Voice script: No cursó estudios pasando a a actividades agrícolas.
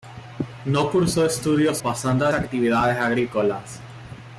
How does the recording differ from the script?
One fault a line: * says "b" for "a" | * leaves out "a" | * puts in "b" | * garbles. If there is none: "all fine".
all fine